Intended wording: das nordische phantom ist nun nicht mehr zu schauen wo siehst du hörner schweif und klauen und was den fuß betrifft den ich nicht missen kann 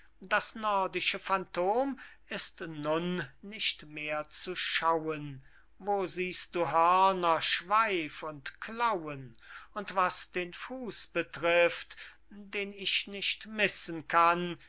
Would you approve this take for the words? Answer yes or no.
yes